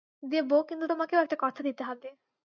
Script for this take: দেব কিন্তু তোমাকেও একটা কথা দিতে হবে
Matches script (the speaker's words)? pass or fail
pass